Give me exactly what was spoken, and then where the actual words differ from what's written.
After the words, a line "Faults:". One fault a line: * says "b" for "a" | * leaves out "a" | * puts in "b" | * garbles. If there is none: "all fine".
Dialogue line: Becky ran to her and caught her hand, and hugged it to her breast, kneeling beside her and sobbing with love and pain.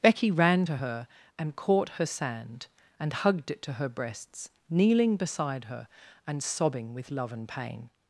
Becky ran to her and caught her sand, and hugged it to her breasts, kneeling beside her and sobbing with love and pain.
Faults:
* says "sand" for "hand"
* says "breasts" for "breast"